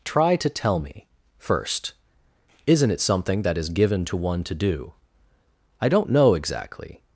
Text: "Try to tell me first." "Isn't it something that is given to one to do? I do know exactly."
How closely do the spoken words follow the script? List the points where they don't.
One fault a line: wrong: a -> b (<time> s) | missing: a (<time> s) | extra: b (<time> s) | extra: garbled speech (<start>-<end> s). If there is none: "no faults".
wrong: do -> don't (5.9 s)